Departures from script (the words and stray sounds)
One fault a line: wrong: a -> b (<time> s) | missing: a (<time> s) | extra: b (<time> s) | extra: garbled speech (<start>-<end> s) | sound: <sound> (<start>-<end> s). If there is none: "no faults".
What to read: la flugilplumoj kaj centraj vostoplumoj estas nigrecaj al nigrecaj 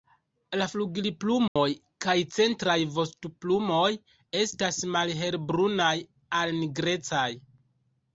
sound: dropout (1.5-1.6 s)
wrong: nigrecaj -> malhelbrunaj (5.0 s)